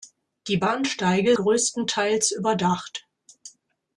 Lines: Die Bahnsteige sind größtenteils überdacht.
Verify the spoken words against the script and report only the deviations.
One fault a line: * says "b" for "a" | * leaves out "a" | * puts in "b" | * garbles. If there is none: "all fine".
* leaves out "sind"